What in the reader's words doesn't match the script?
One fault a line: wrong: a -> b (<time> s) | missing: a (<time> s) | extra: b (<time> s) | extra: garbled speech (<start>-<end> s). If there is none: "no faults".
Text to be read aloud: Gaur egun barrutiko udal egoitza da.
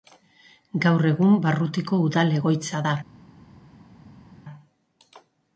no faults